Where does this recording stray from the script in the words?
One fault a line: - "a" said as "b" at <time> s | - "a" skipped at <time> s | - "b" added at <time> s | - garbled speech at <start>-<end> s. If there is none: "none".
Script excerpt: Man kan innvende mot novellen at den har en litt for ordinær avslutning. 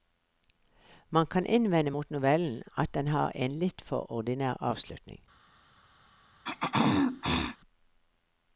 none